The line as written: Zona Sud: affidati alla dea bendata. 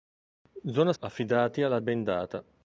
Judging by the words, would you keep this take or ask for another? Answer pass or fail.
fail